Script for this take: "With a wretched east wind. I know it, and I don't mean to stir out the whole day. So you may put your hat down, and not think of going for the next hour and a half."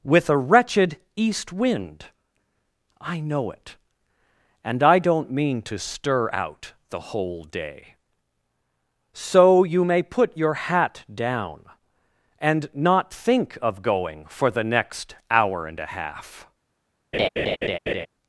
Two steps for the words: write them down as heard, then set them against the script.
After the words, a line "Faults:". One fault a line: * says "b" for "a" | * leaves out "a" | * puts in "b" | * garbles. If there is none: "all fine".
"With a wretched east wind. I know it, and I don't mean to stir out the whole day. So you may put your hat down, and not think of going for the next hour and a half."
Faults:
all fine